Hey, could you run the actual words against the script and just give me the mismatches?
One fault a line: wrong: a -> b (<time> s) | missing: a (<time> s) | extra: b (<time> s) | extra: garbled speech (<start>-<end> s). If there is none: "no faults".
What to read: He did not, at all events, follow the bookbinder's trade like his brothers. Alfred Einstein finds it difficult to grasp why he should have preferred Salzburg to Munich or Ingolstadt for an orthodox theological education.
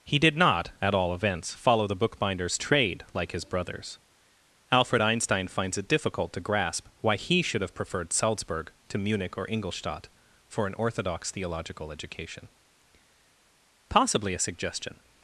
extra: Possibly a suggestion (13.9 s)